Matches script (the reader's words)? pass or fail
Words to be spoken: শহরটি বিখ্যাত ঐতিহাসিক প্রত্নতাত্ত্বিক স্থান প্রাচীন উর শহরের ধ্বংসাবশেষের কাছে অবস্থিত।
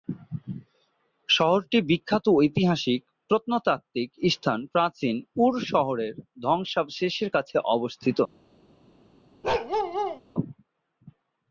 pass